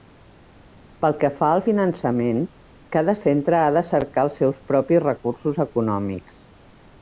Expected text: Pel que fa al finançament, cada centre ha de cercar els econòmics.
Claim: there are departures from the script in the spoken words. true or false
true